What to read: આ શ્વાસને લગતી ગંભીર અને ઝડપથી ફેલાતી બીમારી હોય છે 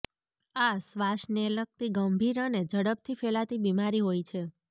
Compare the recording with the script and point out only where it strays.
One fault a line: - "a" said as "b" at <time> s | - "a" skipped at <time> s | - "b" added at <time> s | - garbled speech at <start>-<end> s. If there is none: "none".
none